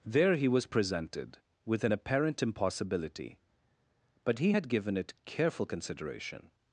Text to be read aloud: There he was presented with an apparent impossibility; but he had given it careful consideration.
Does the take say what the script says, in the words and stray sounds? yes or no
yes